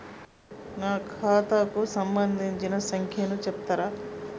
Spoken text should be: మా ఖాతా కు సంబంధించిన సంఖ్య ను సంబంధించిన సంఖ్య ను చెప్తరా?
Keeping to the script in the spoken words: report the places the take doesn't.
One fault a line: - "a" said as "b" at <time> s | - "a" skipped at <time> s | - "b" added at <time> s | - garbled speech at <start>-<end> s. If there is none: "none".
- "మా" said as "నా" at 0.8 s
- "సంబంధించిన సంఖ్య ను" skipped at 3.4 s